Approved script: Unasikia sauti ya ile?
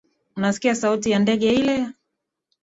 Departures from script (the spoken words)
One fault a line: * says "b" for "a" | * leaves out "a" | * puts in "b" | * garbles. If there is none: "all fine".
* puts in "ndege"